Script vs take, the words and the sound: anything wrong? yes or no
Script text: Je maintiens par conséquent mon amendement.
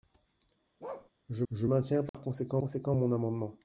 yes